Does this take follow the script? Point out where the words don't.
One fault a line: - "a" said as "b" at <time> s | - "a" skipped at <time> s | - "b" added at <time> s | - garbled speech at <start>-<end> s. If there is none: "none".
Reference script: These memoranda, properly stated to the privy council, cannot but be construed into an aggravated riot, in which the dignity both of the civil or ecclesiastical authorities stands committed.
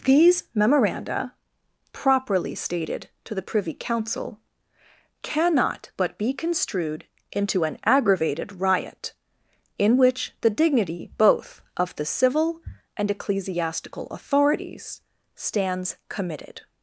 - "or" said as "and" at 12.9 s